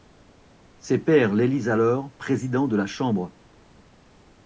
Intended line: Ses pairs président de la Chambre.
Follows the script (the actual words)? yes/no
no